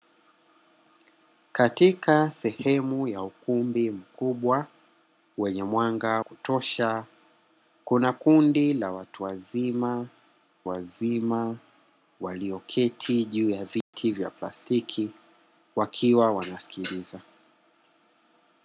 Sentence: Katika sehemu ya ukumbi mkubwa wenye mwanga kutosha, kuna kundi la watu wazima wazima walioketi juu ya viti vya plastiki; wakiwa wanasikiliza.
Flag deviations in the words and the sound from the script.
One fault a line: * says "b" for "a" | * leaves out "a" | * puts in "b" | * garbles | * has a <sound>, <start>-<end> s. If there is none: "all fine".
* has a dropout, 13.8-13.9 s